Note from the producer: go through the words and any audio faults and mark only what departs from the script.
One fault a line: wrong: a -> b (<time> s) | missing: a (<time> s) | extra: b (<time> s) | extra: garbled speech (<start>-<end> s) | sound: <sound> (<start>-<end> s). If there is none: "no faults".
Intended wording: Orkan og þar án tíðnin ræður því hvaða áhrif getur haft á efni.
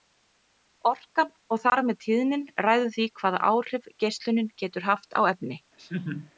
wrong: án -> með (1.9 s)
extra: geislunin (4.0 s)
sound: laugh (5.8-6.3 s)